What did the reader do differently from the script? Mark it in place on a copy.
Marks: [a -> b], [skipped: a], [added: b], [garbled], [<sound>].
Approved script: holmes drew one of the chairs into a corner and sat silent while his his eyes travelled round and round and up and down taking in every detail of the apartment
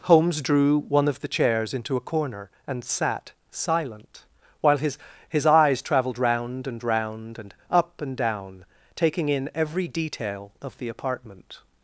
holmes drew one of the chairs into a corner and sat silent while his his eyes travelled round and round and up and down taking in every detail of the apartment